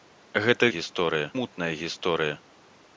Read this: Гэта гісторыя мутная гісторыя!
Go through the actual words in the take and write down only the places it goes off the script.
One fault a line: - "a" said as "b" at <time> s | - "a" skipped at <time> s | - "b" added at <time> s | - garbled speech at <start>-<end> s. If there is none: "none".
none